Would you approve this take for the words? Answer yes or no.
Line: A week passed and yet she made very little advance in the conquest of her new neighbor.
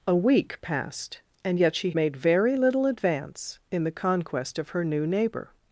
yes